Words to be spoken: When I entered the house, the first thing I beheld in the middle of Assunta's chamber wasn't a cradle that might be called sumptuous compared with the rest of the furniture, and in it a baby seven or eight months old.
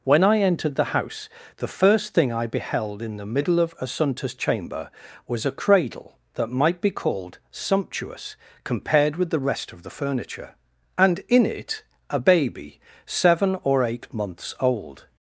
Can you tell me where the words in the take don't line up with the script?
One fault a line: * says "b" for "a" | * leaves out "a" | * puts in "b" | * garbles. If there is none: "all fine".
* says "was" for "wasn't"